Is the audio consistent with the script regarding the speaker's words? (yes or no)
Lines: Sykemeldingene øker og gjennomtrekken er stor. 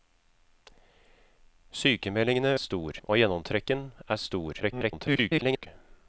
no